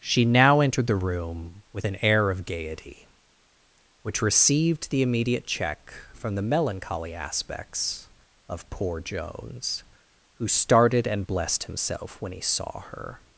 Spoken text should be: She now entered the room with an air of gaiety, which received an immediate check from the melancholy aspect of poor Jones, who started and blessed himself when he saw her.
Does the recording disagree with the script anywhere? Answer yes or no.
yes